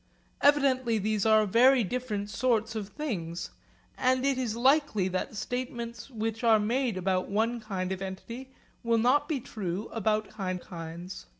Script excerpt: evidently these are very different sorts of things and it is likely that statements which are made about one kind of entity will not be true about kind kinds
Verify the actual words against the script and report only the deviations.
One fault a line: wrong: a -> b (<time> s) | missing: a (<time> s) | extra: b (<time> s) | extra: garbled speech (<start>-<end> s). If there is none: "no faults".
no faults